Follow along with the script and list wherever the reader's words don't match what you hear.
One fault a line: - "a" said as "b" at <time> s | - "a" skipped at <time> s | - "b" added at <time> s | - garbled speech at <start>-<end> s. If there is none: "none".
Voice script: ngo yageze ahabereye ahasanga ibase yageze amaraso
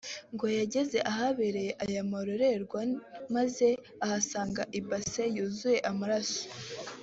- "aya marorerwa maze" added at 1.8 s
- "yageze" said as "yuzuye" at 5.3 s